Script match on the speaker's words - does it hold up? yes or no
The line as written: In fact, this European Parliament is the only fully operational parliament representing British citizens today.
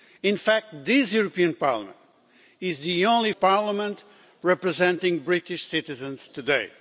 no